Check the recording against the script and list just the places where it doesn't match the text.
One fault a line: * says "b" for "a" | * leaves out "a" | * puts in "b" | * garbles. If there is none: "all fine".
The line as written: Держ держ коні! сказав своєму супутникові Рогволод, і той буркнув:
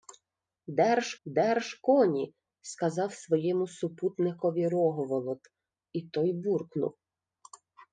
all fine